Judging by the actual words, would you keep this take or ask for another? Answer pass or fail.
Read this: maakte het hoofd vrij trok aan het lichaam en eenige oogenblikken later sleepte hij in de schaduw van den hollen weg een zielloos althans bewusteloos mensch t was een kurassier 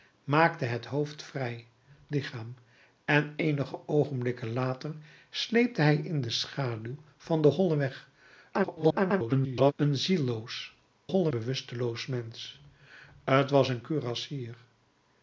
fail